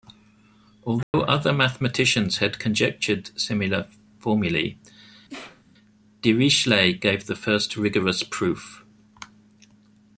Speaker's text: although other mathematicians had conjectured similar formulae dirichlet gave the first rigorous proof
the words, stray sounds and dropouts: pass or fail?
fail